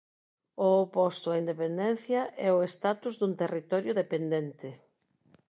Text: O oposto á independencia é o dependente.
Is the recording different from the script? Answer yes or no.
yes